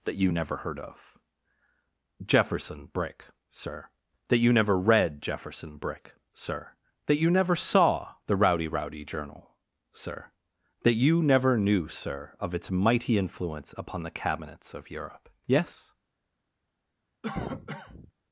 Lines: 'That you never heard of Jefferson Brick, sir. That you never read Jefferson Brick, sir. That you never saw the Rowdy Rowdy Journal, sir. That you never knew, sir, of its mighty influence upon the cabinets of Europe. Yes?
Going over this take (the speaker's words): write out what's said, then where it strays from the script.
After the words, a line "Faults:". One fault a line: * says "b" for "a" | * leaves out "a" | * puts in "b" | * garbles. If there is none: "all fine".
'That you never heard of Jefferson Brick, sir. That you never read Jefferson Brick, sir. That you never saw the Rowdy Rowdy Journal, sir. That you never knew, sir, of its mighty influence upon the cabinets of Europe. Yes?
Faults:
all fine